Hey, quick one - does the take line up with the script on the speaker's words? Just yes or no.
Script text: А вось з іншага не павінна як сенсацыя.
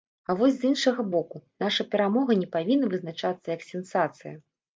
no